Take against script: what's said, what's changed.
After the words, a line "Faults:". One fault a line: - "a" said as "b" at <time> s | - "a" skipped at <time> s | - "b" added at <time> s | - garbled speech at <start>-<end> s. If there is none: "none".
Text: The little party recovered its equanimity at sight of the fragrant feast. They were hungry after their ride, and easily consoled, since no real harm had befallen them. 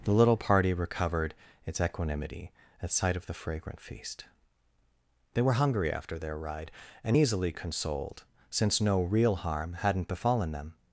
The little party recovered its equanimity at sight of the fragrant feast. They were hungry after their ride, and easily consoled, since no real harm hadn't befallen them.
Faults:
- "had" said as "hadn't" at 9.7 s